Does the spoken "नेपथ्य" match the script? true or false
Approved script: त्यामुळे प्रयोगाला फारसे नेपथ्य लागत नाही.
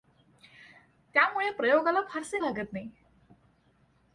false